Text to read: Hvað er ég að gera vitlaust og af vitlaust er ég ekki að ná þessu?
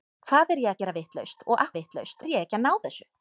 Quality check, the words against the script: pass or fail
pass